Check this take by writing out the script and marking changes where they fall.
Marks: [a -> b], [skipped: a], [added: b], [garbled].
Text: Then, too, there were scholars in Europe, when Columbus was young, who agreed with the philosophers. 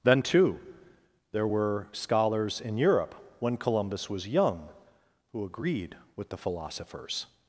Then, too, there were scholars in Europe, when Columbus was young, who agreed with the philosophers.